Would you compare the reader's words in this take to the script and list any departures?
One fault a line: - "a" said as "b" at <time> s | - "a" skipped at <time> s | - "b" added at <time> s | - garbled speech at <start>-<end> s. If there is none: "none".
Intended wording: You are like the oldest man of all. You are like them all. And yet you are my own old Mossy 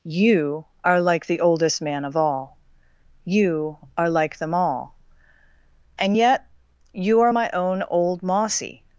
none